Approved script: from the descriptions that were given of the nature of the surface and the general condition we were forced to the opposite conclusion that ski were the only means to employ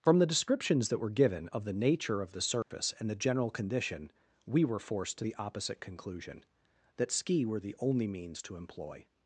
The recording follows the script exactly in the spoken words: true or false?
true